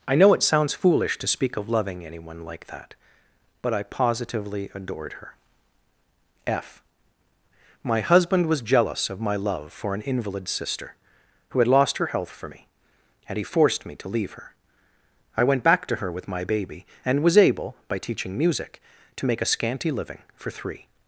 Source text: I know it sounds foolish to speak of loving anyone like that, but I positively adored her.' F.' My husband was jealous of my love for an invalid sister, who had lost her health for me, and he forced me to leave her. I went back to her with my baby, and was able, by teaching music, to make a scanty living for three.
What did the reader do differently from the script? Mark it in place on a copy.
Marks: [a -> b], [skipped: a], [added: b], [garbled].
I know it sounds foolish to speak of loving anyone like that, but I positively adored her.' F.' My husband was jealous of my love for an invalid sister, who had lost her health for me, and he forced me to leave her. I went back to her with my baby, and was able, by teaching music, to make a scanty living for three.